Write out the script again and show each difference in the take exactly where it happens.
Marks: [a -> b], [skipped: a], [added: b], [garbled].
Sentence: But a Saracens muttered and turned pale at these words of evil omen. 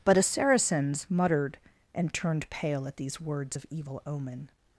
But a Saracens muttered and turned pale at these words of evil omen.